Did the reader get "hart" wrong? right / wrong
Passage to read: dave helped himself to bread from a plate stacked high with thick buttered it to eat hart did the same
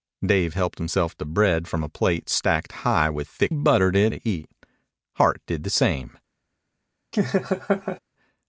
right